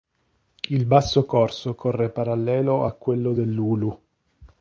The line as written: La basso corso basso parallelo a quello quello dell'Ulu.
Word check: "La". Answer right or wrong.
wrong